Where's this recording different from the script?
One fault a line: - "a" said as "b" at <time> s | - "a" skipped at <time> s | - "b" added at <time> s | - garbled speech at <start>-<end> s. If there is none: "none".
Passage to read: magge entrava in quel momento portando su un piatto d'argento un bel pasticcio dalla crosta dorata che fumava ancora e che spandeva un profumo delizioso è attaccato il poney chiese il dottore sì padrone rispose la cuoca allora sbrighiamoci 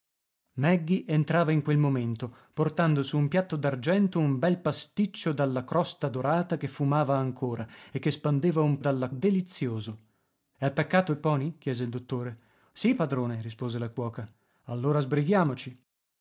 - "profumo" said as "dalla" at 8.8 s